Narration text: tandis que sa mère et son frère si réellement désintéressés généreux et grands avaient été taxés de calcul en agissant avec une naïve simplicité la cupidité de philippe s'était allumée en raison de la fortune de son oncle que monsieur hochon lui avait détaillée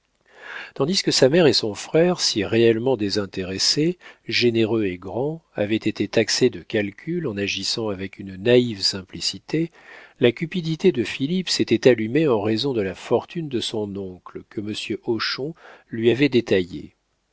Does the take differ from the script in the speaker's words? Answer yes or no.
no